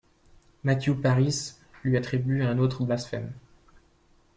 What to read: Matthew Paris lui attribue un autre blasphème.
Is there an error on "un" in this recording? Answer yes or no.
no